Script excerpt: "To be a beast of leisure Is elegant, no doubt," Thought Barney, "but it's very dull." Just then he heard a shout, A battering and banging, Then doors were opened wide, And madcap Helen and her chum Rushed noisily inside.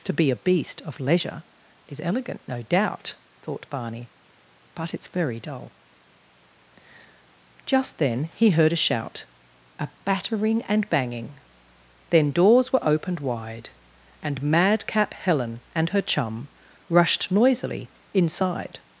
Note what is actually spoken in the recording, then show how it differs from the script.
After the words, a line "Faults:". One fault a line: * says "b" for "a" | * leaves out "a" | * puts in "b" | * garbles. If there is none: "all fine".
"To be a beast of leisure Is elegant, no doubt," Thought Barney, "but it's very dull." Just then he heard a shout, A battering and banging, Then doors were opened wide, And madcap Helen and her chum Rushed noisily inside.
Faults:
all fine